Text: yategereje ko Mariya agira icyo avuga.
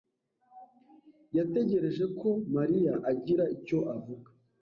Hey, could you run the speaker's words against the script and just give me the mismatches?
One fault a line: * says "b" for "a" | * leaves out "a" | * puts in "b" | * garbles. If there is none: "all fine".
all fine